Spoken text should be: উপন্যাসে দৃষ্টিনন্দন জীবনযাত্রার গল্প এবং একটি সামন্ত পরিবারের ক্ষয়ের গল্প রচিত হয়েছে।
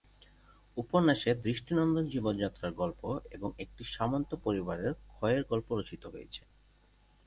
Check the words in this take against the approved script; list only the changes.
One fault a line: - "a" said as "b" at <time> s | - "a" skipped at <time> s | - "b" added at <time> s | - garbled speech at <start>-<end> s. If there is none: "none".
none